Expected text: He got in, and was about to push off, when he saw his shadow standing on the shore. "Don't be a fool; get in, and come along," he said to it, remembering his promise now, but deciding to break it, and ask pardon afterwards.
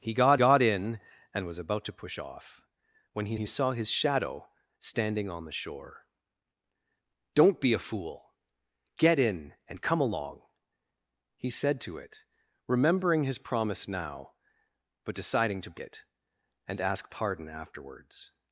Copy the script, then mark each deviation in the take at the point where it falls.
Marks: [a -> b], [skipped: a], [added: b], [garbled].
He got [added: got] in, and was about to push off, when he [added: he] saw his shadow standing on the shore. "Don't be a fool; get in, and come along," he said to it, remembering his promise now, but deciding to [skipped: break] it, and ask pardon afterwards.